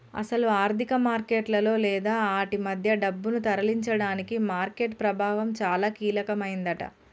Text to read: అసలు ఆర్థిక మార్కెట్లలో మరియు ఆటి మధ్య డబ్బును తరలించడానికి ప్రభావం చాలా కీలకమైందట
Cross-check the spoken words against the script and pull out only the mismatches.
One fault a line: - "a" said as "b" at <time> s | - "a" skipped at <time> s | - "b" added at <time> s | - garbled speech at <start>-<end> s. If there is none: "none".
- "మరియు" said as "లేదా" at 1.8 s
- "మార్కెట్" added at 4.5 s